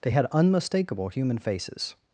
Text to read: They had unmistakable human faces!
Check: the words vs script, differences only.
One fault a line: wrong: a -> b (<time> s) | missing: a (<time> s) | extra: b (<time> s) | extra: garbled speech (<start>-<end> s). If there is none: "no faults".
no faults